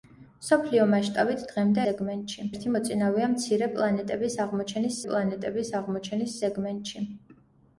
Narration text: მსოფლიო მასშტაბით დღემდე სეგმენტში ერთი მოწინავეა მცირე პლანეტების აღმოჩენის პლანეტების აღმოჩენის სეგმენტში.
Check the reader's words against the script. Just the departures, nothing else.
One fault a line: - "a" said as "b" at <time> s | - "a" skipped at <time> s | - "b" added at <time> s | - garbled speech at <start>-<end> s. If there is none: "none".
none